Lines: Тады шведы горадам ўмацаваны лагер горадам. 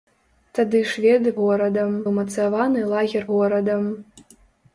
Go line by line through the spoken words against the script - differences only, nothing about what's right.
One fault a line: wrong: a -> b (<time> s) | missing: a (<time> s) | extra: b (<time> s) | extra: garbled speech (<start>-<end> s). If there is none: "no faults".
no faults